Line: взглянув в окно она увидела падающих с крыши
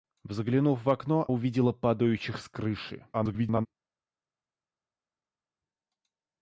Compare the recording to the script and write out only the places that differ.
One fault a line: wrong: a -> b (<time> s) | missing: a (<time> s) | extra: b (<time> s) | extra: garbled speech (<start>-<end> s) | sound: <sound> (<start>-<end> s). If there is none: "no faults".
missing: она (1.3 s)
extra: garbled speech (3.1-3.7 s)